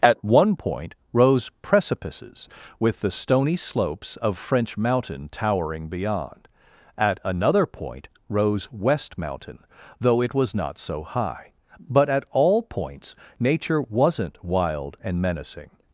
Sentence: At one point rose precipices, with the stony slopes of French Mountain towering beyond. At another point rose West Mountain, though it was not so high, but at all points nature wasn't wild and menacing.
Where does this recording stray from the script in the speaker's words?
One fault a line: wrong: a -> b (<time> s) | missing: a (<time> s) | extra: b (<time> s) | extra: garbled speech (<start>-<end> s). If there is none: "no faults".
no faults